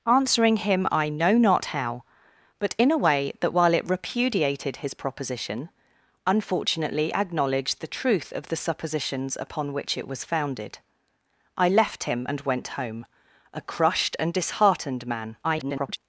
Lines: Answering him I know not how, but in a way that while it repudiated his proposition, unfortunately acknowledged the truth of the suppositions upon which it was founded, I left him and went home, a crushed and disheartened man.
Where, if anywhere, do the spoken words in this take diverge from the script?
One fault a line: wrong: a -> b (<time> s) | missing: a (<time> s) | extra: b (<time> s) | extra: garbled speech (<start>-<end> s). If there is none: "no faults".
extra: garbled speech (15.4-16.0 s)